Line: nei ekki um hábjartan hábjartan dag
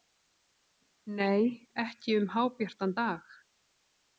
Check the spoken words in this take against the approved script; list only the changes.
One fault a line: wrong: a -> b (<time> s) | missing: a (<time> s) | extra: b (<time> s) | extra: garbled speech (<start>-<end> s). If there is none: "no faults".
missing: hábjartan (3.0 s)